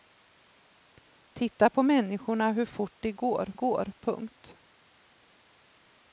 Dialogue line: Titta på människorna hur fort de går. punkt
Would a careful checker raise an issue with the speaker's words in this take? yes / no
yes